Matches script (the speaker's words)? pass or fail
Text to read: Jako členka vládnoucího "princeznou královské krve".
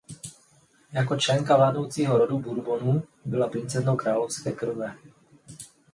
fail